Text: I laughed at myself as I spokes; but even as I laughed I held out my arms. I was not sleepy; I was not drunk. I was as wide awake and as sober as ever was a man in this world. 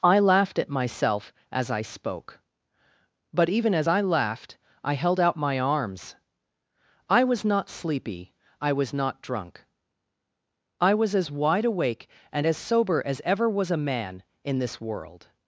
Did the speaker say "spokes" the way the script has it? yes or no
no